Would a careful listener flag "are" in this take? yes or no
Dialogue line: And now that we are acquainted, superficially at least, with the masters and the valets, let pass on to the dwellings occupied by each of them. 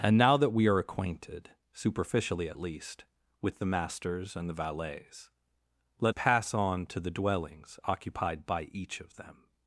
no